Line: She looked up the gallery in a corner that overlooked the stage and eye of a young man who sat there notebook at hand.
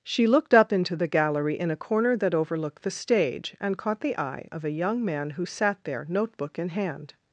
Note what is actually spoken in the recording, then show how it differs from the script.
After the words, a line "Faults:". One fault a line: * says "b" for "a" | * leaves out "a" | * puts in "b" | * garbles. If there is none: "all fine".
She looked up into the gallery in a corner that overlooked the stage and caught the eye of a young man who sat there notebook in hand.
Faults:
* puts in "into"
* puts in "caught the"
* says "in" for "at"